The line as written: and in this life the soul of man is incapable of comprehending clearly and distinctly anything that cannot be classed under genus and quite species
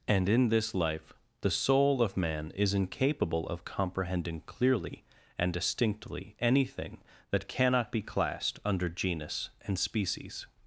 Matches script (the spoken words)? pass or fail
fail